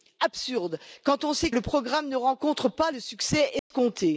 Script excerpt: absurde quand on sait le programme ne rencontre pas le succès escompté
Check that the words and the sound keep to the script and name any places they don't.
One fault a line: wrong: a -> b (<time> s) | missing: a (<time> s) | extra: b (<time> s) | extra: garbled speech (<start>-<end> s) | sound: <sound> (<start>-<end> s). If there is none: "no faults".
sound: dropout (3.6-3.7 s)